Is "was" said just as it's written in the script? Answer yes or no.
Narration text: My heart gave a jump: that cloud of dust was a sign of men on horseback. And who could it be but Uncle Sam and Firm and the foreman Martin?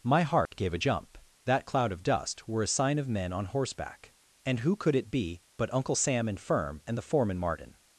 no